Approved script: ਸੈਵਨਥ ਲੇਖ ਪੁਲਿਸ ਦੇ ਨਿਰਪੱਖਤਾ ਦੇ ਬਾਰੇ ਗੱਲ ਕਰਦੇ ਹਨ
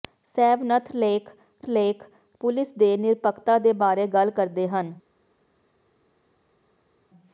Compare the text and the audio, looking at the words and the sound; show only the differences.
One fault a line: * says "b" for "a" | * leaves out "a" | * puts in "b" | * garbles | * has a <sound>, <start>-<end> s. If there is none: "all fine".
* puts in "ਲੇਖ"